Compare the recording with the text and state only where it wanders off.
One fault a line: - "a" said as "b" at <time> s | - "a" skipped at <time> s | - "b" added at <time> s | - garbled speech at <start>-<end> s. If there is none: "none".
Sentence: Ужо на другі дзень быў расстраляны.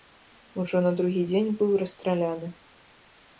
none